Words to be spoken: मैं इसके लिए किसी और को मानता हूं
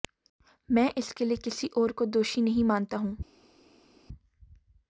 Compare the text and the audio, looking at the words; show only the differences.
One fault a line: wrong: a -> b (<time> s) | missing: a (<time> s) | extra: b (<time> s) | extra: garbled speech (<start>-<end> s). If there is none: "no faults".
extra: दोषी नहीं (2.0 s)